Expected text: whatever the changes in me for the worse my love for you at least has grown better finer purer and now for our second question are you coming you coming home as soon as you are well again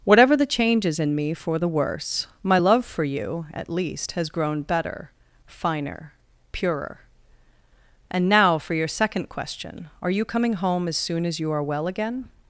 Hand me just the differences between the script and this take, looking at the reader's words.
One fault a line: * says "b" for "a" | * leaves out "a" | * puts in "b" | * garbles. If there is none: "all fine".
* says "your" for "our"
* leaves out "you coming"